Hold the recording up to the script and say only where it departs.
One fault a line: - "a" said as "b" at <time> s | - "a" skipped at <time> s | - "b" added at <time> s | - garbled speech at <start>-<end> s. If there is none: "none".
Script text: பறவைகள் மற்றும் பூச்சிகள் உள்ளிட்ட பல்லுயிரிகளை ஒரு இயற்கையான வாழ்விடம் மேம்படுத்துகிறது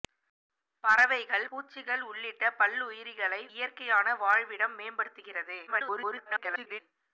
- "மற்றும்" skipped at 1.4 s
- "ஒரு" skipped at 3.4 s
- garbled speech at 5.7-6.8 s